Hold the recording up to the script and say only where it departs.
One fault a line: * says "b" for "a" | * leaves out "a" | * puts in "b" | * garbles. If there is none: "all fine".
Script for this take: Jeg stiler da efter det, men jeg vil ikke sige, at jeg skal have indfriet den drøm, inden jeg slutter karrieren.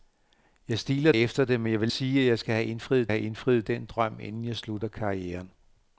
* leaves out "da"
* leaves out "ikke"
* puts in "have indfriet"